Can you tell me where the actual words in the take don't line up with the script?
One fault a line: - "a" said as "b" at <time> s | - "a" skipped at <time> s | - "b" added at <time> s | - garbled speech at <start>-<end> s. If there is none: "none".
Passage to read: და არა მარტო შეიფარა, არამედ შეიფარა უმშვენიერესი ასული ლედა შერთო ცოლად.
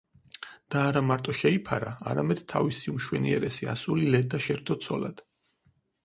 - "შეიფარა" said as "თავისი" at 2.5 s